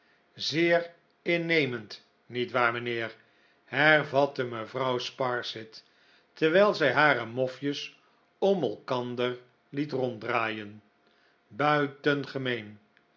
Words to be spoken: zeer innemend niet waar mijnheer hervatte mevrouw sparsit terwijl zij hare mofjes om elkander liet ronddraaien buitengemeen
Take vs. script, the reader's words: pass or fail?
pass